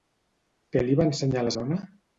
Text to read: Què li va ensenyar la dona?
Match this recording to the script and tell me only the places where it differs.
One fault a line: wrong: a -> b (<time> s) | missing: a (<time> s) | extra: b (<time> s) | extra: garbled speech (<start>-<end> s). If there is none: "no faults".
no faults